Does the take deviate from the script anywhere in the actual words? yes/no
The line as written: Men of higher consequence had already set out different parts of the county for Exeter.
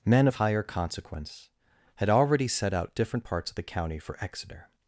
no